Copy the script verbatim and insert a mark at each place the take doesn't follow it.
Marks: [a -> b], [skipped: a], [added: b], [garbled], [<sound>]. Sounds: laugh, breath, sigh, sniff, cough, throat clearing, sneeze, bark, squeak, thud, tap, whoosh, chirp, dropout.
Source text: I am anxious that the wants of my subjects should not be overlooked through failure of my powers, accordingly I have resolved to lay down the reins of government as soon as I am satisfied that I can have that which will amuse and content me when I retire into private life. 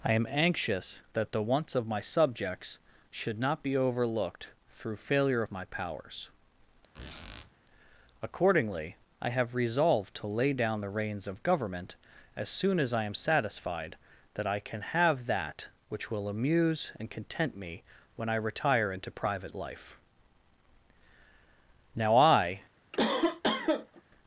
I am anxious that the wants of my subjects should not be overlooked through failure of my powers, [squeak] accordingly I have resolved to lay down the reins of government as soon as I am satisfied that I can have that which will amuse and content me when I retire into private life. [added: Now I] [cough]